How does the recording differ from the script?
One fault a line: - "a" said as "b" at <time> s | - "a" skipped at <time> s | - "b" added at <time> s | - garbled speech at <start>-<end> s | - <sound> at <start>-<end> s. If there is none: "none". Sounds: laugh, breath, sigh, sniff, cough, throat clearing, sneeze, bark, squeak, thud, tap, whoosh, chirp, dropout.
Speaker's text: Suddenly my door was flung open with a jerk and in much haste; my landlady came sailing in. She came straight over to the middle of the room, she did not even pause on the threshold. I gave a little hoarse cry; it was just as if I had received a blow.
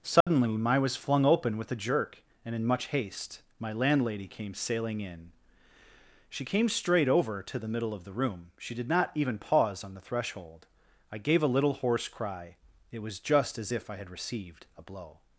- dropout at 0.2-0.3 s
- "door" skipped at 0.8 s